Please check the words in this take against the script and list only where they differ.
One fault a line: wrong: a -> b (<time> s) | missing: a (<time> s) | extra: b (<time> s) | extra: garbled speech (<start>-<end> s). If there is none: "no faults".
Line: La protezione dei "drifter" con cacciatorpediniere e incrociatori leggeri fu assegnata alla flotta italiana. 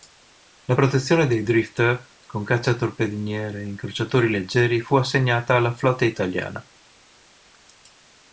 no faults